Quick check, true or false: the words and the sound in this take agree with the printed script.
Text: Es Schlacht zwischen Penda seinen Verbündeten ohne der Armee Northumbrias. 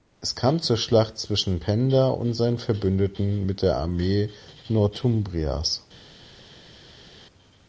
false